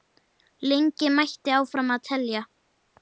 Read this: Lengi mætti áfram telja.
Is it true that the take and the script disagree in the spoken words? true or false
false